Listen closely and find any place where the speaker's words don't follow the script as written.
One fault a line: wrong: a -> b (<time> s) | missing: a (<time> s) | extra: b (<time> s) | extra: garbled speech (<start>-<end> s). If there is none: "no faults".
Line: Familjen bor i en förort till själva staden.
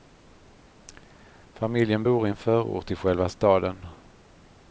no faults